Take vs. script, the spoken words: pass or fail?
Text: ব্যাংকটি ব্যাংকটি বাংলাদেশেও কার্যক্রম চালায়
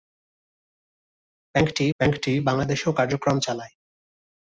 pass